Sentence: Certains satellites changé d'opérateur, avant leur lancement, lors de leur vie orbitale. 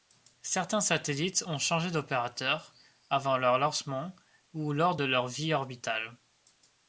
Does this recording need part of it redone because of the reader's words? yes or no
yes